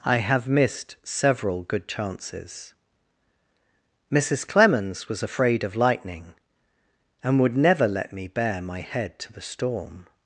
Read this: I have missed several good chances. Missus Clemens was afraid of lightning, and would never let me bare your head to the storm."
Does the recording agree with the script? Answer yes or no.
no